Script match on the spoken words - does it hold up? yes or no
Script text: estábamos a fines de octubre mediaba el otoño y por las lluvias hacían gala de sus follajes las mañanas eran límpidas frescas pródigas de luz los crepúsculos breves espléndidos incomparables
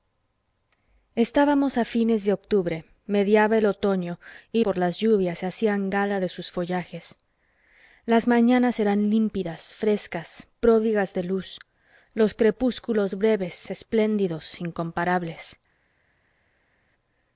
yes